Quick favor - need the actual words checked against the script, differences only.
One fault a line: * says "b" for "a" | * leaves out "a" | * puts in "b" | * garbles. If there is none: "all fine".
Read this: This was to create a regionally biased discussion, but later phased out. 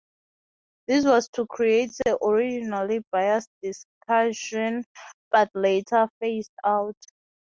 all fine